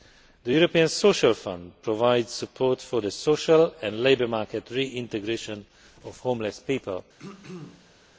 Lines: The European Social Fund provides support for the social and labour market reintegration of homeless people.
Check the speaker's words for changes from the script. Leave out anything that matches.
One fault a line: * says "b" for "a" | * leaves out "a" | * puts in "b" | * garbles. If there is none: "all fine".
all fine